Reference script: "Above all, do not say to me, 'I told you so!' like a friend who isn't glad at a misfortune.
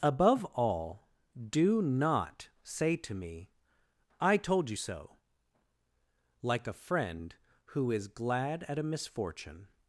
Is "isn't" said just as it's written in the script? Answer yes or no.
no